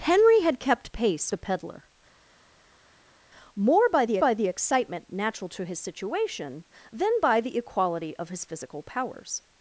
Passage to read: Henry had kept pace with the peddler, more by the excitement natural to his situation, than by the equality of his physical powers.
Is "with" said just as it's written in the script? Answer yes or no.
no